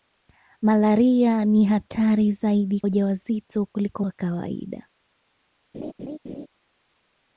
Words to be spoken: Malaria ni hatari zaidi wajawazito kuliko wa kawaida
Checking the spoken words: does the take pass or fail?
pass